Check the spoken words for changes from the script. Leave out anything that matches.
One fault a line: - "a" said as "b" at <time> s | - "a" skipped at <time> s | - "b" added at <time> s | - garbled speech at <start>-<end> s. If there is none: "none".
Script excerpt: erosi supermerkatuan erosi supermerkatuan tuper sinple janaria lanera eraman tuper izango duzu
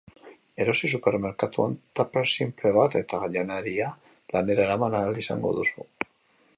- "erosi supermerkatuan tuper sinple" said as "tuper sinple bat eta" at 2.0 s
- "tuper" said as "ahal" at 5.0 s